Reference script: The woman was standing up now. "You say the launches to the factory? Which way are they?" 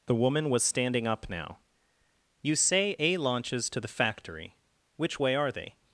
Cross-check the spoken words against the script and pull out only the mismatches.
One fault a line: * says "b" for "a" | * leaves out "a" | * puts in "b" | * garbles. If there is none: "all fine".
* says "a" for "the"